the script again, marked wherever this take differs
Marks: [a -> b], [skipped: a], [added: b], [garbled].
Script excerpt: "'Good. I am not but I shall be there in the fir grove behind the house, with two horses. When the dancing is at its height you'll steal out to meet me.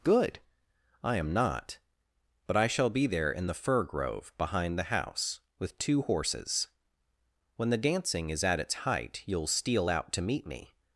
"'Good. I am not but I shall be there in the fir grove behind the house, with two horses. When the dancing is at its height you'll steal out to meet me.